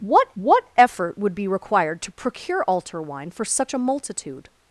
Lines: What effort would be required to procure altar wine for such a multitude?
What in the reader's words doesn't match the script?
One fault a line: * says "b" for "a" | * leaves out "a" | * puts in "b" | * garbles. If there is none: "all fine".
* puts in "what"